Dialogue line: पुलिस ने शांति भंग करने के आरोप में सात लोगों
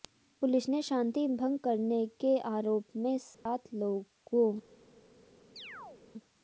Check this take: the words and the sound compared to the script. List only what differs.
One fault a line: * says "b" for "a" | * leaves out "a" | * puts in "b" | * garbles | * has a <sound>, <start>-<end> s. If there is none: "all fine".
* has a dropout, 3.3-3.5 s
* has a chirp, 5.6-6.1 s